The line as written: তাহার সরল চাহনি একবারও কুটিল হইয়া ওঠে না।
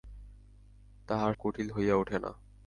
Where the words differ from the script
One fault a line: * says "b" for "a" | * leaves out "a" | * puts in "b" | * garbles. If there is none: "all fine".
* leaves out "সরল চাহনি একবারও"